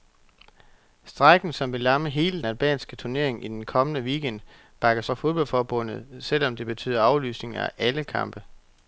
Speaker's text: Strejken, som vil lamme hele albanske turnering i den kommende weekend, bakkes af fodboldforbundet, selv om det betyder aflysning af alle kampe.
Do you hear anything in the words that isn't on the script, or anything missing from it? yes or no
no